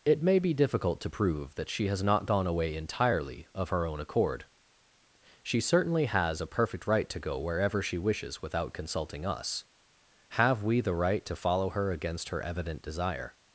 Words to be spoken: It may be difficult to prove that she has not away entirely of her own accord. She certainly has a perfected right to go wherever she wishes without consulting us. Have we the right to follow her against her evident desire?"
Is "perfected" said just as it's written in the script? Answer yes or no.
no